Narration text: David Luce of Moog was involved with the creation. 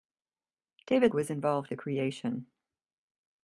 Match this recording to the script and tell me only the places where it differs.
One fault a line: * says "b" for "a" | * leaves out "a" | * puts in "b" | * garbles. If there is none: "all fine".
* leaves out "Luce of Moog"
* leaves out "with"